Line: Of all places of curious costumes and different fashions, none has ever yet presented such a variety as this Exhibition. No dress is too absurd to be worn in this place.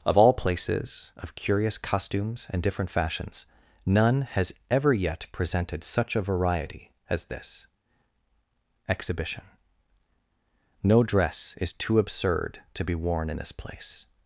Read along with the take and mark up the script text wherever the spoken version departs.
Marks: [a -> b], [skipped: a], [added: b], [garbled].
Of all places of curious costumes and different fashions, none has ever yet presented such a variety as this Exhibition. No dress is too absurd to be worn in this place.